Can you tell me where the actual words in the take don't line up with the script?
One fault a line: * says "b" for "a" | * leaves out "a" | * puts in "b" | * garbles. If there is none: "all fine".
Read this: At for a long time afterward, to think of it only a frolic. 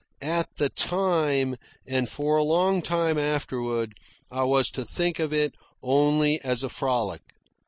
* puts in "the time and"
* puts in "I was"
* puts in "as"